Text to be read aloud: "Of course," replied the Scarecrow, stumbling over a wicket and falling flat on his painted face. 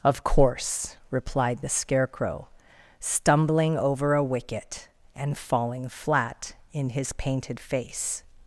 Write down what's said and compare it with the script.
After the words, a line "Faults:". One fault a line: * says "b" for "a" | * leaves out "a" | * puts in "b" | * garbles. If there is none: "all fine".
"Of course," replied the Scarecrow, stumbling over a wicket and falling flat in his painted face.
Faults:
* says "in" for "on"